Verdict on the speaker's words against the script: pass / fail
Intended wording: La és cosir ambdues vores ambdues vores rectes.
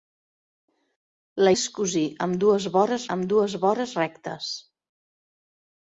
pass